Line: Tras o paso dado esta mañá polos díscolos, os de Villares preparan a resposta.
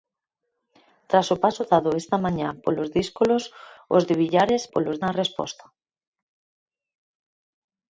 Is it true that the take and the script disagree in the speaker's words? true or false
true